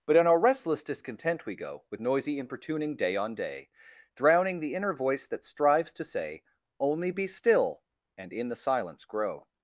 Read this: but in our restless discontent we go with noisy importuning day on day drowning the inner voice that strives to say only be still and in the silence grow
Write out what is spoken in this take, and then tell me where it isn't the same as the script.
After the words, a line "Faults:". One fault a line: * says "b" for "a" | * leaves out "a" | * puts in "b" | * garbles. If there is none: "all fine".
but in our restless discontent we go with noisy importuning day on day drowning the inner voice that strives to say only be still and in the silence grow
Faults:
all fine